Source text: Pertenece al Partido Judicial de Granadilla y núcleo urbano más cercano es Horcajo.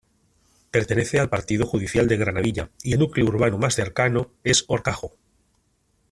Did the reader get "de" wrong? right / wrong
right